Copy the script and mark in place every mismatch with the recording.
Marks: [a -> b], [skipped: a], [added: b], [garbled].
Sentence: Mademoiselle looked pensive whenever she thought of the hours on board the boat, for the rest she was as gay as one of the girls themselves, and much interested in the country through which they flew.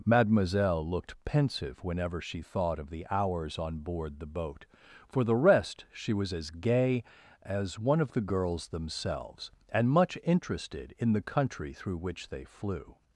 Mademoiselle looked pensive whenever she thought of the hours on board the boat, for the rest she was as gay as one of the girls themselves, and much interested in the country through which they flew.